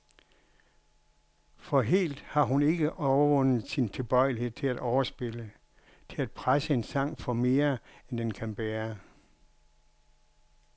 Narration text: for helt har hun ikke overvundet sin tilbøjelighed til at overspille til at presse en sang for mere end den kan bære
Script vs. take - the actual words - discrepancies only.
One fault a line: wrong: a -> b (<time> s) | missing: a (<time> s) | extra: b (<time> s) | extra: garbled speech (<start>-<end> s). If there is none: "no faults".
no faults